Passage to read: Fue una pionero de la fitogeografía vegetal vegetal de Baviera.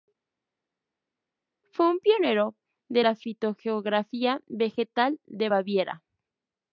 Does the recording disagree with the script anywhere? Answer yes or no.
yes